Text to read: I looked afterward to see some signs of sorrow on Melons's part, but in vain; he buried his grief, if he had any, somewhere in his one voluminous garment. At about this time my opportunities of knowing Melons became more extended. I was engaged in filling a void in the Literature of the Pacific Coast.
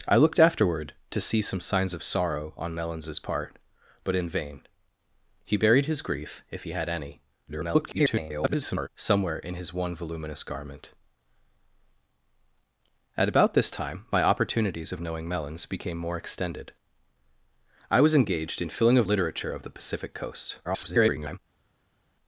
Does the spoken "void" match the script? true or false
false